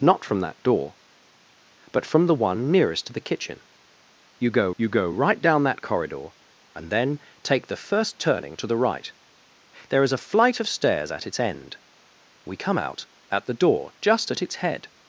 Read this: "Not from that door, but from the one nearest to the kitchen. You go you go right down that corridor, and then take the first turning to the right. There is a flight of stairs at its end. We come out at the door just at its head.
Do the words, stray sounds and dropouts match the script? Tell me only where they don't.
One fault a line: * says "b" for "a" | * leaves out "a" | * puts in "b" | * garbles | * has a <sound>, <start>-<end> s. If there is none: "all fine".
all fine